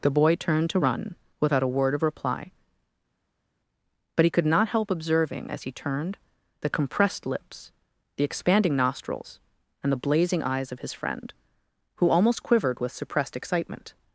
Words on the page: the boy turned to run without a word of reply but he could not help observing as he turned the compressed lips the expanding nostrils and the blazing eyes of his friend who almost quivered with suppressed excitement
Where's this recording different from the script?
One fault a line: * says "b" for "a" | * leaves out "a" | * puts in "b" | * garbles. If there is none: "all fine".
all fine